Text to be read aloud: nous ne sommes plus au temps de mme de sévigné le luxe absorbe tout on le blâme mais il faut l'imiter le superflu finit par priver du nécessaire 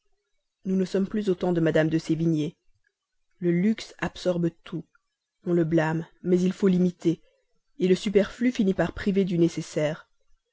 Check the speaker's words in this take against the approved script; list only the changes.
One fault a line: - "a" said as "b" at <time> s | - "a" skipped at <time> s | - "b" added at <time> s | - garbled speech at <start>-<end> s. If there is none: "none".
none